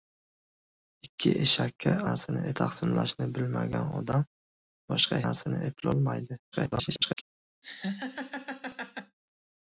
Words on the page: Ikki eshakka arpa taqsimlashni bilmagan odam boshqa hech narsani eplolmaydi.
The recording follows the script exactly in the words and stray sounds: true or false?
false